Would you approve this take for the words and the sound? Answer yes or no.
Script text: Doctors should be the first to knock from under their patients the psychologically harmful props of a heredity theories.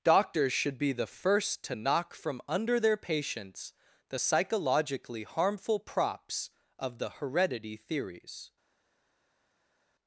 no